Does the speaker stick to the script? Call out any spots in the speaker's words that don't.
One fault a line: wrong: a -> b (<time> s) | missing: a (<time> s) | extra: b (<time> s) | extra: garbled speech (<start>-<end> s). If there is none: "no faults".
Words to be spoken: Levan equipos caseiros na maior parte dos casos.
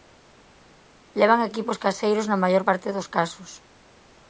no faults